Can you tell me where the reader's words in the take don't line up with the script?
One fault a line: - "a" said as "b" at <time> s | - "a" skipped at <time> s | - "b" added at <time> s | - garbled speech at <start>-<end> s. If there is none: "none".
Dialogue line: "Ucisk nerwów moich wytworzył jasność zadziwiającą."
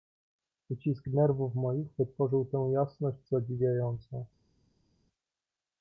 - "tę" added at 2.5 s